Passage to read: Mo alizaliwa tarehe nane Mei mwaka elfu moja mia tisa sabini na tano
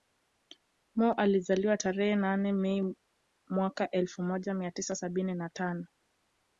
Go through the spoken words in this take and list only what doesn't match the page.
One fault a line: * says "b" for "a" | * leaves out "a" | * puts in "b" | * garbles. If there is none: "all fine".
all fine